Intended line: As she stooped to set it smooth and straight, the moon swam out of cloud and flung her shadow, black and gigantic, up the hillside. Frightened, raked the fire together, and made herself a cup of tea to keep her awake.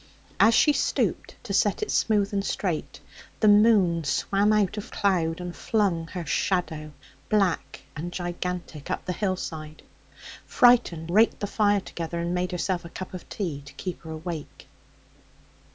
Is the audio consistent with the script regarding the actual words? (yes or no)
yes